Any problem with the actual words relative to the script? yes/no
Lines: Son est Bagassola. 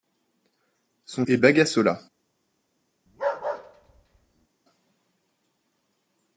no